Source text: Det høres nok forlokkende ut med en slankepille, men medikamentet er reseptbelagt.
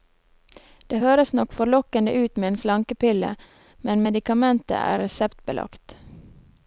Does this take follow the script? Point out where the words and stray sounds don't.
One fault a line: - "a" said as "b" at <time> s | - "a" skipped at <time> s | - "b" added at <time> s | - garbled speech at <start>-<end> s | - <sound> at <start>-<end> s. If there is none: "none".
none